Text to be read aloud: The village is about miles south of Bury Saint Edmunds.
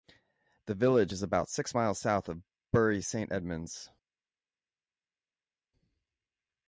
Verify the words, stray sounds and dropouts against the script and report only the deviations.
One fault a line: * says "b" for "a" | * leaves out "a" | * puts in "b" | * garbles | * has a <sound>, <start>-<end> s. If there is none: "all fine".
* puts in "six"